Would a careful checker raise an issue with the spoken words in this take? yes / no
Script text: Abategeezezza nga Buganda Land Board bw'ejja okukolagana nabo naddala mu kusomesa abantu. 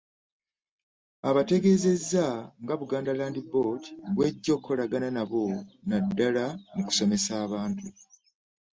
no